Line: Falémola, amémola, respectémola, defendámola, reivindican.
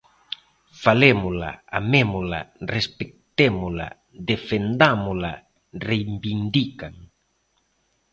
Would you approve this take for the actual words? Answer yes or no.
yes